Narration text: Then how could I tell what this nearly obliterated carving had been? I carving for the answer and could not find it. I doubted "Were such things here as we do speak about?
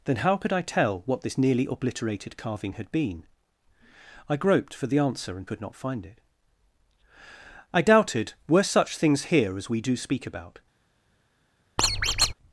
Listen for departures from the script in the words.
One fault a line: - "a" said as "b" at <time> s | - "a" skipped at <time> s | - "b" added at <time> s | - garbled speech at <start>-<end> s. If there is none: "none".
- "carving" said as "groped" at 4.3 s